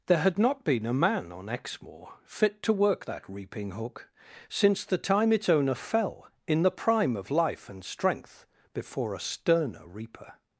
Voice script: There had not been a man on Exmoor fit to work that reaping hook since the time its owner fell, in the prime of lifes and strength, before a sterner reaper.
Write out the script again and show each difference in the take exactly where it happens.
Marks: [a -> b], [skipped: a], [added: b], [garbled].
There had not been a man on Exmoor fit to work that reaping hook since the time its owner fell, in the prime of [lifes -> life] and strength, before a sterner reaper.